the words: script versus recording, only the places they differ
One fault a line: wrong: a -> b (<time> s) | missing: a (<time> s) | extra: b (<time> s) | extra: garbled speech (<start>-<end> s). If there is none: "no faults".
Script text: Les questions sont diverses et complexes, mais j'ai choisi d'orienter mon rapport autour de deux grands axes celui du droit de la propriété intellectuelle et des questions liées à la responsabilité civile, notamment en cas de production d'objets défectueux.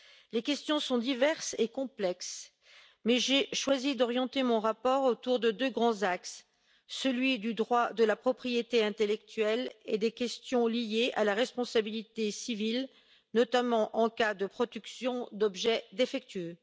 no faults